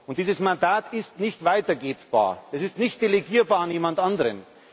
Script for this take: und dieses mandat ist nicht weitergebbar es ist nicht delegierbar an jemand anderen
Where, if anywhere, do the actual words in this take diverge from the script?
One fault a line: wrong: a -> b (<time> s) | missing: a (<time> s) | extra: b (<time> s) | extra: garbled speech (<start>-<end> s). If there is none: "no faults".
no faults